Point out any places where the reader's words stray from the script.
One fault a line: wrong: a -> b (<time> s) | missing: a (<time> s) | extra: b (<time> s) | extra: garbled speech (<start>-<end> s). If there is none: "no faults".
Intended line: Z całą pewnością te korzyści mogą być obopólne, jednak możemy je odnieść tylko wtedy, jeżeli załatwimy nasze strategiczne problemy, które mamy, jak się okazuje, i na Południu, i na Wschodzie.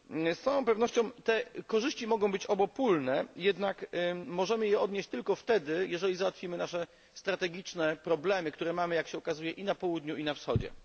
no faults